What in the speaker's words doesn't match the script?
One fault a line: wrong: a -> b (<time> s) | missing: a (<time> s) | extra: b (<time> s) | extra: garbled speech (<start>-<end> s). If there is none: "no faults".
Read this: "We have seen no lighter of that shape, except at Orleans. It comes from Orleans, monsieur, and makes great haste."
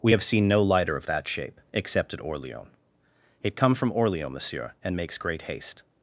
wrong: comes -> come (3.5 s)